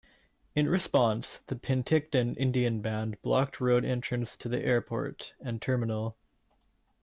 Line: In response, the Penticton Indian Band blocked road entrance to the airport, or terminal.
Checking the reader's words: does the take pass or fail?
fail